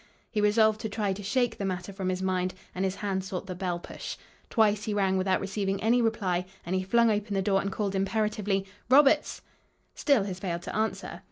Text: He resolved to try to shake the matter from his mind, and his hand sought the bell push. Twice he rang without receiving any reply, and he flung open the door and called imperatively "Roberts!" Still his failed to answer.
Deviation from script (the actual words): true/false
false